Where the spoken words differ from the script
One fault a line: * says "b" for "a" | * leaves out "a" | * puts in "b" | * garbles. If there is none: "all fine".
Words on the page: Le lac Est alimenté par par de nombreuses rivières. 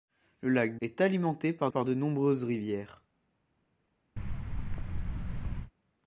all fine